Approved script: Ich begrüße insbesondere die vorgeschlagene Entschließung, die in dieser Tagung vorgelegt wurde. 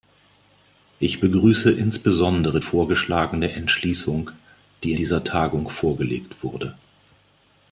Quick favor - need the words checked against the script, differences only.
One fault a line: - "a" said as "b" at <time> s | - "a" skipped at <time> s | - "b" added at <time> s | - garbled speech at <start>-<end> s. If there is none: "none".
- "die" skipped at 2.6 s
- "in" skipped at 4.9 s